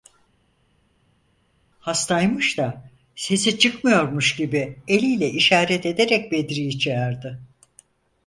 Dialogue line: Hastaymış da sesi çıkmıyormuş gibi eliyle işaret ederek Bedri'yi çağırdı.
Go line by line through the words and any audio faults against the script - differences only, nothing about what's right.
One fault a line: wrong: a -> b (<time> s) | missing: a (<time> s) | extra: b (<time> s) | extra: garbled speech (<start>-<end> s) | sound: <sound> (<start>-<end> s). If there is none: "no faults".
no faults